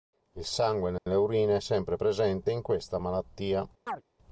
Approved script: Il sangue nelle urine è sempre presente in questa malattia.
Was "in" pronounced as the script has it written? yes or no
yes